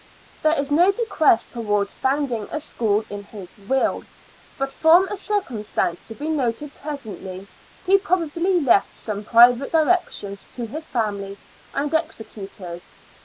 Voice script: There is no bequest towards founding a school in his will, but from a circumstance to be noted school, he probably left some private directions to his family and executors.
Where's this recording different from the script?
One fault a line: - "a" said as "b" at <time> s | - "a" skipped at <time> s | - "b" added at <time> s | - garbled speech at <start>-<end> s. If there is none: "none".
- "school" said as "presently" at 6.7 s